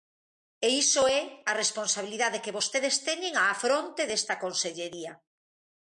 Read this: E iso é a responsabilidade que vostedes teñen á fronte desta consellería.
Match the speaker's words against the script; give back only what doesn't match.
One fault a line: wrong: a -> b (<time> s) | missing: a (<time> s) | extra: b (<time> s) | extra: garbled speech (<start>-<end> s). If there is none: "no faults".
no faults